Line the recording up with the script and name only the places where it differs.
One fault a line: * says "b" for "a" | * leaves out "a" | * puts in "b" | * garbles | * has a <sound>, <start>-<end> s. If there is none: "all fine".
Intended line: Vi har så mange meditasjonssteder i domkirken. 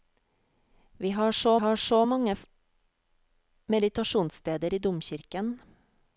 * puts in "har så"